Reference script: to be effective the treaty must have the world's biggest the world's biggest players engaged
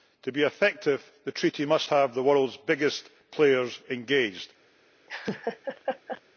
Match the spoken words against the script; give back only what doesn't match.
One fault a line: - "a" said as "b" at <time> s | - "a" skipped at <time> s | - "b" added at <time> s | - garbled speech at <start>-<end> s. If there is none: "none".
- "the world's biggest" skipped at 3.1 s